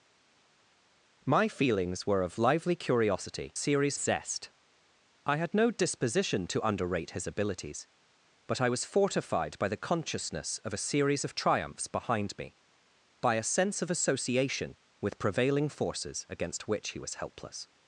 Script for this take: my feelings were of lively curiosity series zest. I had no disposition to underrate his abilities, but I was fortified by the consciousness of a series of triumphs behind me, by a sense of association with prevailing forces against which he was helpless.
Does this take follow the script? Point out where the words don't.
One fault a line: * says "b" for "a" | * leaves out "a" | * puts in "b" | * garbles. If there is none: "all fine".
all fine